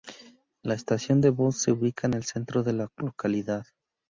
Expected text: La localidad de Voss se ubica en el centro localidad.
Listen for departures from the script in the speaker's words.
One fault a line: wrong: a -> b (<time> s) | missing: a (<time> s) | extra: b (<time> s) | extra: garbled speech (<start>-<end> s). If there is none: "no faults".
wrong: localidad -> estación (0.7 s)
extra: de la (2.6 s)